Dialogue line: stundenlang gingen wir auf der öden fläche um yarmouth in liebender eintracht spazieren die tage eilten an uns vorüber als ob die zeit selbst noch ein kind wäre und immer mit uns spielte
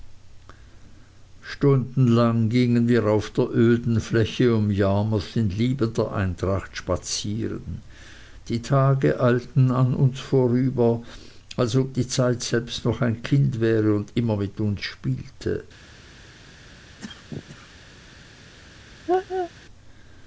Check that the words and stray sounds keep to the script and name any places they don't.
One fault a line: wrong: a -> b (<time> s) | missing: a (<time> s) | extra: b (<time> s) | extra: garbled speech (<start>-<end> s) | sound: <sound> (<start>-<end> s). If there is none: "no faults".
sound: cough (17.0-17.8 s)
sound: laugh (19.1-19.5 s)